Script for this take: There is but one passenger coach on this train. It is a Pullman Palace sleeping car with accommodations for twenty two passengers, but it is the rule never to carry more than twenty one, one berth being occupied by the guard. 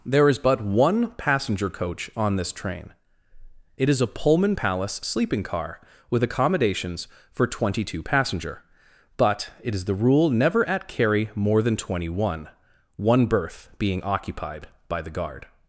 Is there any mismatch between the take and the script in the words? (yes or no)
yes